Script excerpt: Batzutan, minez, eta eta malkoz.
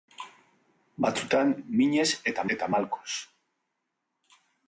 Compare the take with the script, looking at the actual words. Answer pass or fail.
pass